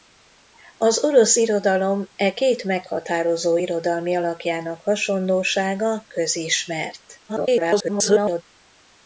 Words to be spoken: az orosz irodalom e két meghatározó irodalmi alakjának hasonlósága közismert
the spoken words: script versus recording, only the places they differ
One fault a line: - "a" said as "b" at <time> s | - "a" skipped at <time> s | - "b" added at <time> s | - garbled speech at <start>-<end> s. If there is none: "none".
- garbled speech at 7.3-8.4 s